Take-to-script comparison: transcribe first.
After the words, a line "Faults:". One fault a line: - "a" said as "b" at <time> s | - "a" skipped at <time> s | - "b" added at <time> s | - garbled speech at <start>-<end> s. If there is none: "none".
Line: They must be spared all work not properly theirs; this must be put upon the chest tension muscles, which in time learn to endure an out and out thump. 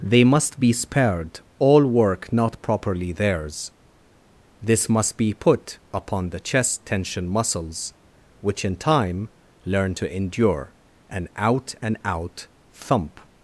They must be spared all work not properly theirs; this must be put upon the chest tension muscles, which in time learn to endure an out and out thump.
Faults:
none